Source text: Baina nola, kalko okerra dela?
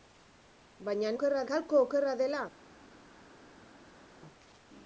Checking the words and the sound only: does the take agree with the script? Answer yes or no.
no